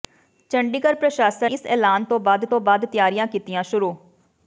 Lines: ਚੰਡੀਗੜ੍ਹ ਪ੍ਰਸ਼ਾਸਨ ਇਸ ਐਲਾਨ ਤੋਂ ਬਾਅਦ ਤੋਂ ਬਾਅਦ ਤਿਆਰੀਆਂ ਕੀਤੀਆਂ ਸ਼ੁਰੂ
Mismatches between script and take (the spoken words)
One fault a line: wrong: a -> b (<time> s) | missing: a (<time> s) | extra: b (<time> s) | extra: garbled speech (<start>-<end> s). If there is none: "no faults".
no faults